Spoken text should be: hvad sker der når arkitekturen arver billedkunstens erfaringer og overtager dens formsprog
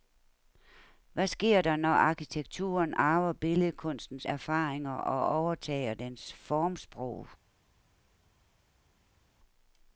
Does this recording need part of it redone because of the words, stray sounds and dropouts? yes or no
no